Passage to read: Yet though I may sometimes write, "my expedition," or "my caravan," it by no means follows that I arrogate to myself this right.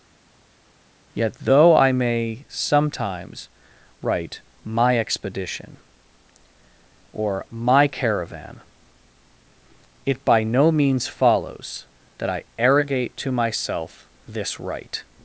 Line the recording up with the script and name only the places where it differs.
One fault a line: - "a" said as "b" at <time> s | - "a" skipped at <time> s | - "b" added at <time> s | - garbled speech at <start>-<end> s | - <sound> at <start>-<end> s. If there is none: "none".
none